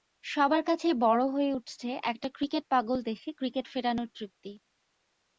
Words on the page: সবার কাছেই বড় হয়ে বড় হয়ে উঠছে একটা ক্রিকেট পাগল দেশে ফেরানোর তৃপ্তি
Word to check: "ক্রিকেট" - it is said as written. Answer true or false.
true